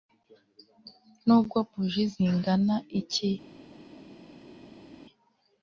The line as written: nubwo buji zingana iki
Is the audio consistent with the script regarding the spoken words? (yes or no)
yes